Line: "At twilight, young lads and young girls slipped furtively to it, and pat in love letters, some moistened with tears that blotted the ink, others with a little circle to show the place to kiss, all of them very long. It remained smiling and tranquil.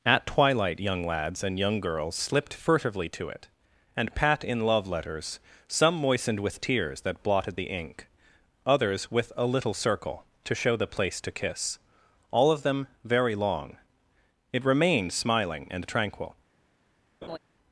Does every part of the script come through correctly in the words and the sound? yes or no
no